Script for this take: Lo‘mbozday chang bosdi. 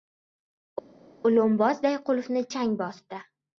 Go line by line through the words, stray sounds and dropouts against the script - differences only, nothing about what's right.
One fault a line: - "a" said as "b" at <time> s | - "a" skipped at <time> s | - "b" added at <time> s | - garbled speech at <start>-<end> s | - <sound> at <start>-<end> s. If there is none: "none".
- "qulfni" added at 2.1 s